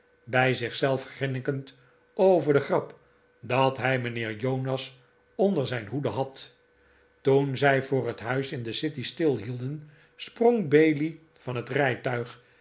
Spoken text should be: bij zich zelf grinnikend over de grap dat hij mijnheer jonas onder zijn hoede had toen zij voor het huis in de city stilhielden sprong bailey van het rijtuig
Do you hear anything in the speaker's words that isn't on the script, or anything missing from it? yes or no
no